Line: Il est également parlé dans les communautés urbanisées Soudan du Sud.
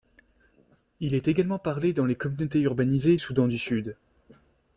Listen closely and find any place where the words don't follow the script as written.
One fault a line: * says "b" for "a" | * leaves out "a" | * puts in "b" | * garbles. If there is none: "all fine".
all fine